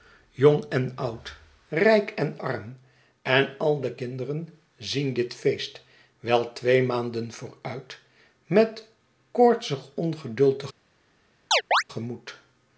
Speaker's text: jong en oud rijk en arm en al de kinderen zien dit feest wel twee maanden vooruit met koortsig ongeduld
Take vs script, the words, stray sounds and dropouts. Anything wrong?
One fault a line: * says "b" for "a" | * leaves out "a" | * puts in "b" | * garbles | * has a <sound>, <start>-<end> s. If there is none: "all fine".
* has a chirp, 11.5-11.8 s